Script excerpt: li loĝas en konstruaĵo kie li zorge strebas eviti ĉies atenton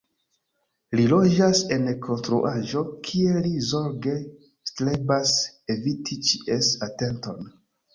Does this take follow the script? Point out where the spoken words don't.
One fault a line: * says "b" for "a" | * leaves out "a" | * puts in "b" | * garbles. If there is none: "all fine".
all fine